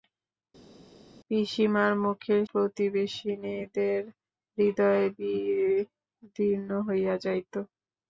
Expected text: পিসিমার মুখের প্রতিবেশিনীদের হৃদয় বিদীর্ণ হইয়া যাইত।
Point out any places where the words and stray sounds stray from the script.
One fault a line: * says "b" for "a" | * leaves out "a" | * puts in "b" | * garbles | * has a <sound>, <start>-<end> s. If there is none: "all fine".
all fine